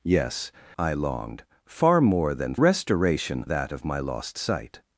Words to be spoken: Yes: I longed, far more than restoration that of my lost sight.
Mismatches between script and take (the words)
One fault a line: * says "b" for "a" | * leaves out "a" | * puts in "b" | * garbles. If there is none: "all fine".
all fine